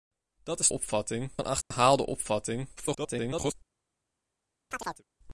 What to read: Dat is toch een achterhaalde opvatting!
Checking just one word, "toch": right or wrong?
wrong